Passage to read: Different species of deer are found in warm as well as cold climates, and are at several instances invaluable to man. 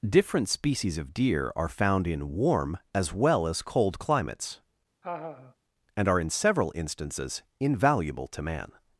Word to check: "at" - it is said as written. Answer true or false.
false